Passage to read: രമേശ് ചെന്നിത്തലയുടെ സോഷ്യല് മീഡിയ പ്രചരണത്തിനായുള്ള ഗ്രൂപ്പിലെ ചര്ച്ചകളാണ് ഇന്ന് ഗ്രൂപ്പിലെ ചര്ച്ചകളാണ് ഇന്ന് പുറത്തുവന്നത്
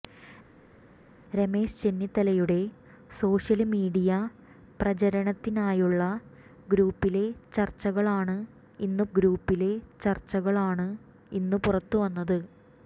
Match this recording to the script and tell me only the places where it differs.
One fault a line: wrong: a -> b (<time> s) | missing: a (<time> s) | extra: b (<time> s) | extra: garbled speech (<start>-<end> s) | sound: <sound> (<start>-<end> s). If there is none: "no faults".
no faults